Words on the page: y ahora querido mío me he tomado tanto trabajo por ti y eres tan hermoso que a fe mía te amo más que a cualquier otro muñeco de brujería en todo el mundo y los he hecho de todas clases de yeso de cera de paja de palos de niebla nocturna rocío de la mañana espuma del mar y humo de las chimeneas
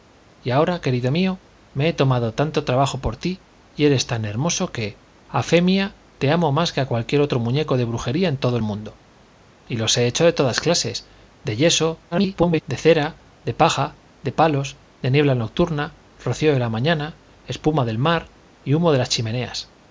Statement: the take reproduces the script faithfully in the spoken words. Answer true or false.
false